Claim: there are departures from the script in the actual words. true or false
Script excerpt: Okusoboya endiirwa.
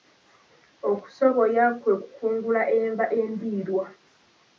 true